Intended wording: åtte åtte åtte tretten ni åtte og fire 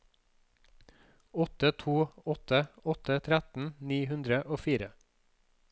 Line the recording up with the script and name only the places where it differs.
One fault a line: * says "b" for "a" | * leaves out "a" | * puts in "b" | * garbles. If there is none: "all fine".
* puts in "to"
* says "hundre" for "åtte"